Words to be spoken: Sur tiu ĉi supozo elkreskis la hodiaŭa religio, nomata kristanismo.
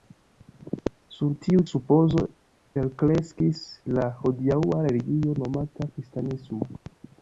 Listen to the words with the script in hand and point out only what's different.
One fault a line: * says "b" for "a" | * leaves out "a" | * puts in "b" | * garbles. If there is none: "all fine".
* leaves out "ĉi"